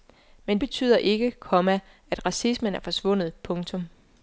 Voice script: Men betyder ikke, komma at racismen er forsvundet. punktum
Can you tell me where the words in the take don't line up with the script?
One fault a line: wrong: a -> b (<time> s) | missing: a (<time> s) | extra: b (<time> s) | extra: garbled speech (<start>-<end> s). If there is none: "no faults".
no faults